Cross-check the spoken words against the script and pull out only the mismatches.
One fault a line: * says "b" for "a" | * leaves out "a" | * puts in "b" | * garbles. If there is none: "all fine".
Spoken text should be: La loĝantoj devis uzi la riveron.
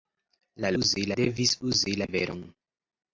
* says "uzi" for "loĝantoj"
* leaves out "la"